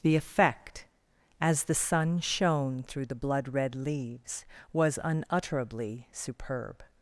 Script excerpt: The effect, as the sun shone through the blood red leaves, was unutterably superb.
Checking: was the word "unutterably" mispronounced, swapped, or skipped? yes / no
no